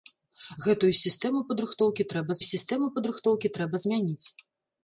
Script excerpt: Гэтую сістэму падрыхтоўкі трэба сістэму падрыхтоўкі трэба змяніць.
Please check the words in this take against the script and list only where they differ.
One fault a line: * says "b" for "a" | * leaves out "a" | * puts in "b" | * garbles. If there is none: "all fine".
all fine